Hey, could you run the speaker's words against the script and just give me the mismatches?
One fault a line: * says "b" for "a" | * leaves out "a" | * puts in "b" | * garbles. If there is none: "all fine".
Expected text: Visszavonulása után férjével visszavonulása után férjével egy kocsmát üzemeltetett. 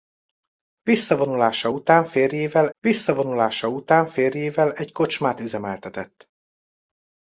all fine